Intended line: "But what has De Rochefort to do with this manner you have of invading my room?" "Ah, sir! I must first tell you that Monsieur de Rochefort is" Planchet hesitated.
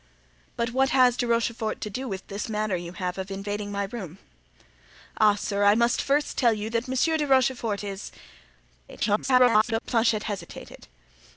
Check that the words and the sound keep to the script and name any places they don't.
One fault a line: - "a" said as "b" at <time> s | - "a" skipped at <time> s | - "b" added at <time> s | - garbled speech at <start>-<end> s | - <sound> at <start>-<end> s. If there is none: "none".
- garbled speech at 8.9-9.8 s